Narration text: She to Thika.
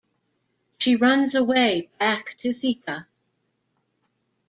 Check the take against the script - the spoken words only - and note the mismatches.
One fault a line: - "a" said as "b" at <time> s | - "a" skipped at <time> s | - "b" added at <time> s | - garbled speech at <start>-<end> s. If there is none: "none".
- "runs away back" added at 0.9 s